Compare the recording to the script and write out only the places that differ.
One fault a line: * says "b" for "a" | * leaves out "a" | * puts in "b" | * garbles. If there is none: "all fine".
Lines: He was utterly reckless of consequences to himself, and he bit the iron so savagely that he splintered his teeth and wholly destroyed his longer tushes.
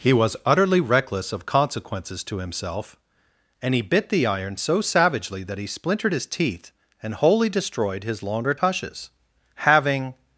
* puts in "Having"